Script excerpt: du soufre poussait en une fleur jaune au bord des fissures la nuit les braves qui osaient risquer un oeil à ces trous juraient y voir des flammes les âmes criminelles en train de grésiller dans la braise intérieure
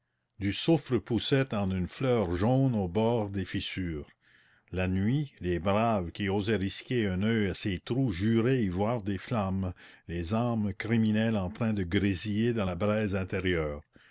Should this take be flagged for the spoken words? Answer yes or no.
no